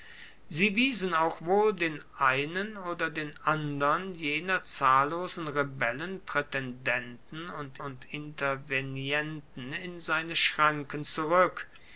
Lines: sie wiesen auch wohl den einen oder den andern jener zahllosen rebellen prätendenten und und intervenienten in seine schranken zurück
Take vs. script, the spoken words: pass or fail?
pass